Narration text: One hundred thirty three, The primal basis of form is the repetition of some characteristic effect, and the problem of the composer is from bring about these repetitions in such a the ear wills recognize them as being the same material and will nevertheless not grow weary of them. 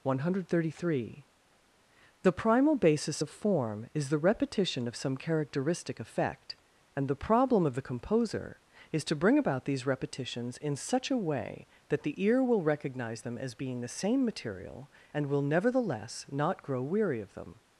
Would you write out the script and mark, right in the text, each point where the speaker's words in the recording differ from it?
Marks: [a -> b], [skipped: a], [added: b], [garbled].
One hundred thirty three, The primal basis of form is the repetition of some characteristic effect, and the problem of the composer is [from -> to] bring about these repetitions in such a [added: way that] the ear [wills -> will] recognize them as being the same material and will nevertheless not grow weary of them.